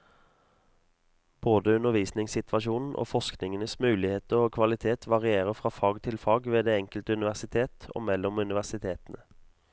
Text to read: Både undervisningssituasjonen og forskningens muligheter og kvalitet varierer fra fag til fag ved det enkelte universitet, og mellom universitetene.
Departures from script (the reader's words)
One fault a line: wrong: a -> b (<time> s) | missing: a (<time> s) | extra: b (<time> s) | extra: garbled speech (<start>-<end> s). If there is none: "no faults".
no faults